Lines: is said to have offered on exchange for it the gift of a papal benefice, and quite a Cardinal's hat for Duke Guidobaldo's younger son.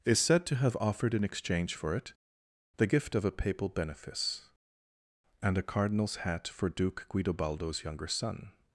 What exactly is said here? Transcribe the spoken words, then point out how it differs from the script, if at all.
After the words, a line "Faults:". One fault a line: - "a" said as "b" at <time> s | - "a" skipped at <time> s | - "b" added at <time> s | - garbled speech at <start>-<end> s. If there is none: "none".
is said to have offered in exchange for it the gift of a papal benefice, and a Cardinal's hat for Duke Guidobaldo's younger son.
Faults:
- "on" said as "in" at 1.1 s
- "quite" skipped at 5.6 s